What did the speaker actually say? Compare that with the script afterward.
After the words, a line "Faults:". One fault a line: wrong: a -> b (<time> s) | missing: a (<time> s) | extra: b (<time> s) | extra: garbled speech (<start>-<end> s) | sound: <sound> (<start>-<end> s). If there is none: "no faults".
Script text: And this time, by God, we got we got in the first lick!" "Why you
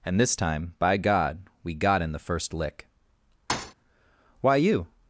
And this time, by God, we got in the first lick!" "Why you
Faults:
missing: we got (2.0 s)
sound: thud (3.5-3.7 s)